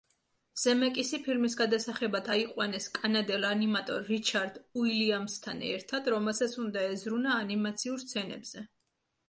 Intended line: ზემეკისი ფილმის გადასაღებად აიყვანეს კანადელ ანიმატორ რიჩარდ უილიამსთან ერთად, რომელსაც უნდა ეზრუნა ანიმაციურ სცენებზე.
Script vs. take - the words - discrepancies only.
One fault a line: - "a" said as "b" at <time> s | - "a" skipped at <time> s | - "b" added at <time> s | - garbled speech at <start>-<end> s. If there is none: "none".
none